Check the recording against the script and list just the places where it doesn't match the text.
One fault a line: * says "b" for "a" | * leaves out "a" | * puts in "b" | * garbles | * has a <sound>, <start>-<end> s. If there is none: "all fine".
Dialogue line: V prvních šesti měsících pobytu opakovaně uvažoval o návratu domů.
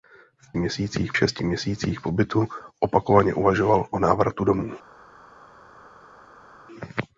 * says "měsících" for "prvních"